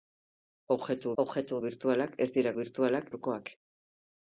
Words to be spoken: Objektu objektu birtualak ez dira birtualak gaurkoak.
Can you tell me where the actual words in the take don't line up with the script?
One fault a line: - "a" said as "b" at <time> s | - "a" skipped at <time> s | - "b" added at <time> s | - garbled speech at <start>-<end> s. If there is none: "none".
none